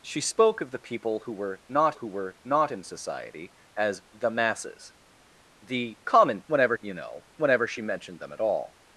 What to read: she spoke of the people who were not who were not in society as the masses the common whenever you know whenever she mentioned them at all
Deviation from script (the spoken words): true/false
false